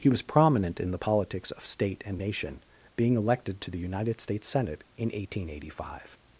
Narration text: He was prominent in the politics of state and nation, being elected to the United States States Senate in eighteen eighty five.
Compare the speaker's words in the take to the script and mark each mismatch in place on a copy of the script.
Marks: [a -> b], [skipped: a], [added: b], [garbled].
He was prominent in the politics of state and nation, being elected to the United States [skipped: States] Senate in eighteen eighty five.